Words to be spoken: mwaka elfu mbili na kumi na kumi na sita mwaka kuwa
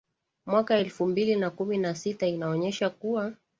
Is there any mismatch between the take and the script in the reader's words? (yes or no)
yes